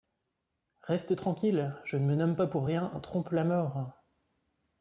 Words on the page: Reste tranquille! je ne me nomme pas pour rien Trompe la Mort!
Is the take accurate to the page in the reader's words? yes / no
yes